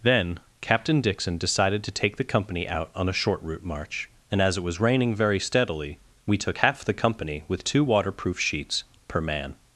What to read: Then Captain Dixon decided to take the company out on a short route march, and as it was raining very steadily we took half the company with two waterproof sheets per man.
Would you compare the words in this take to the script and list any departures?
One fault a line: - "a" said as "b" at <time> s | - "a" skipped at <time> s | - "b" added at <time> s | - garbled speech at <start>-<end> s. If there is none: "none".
none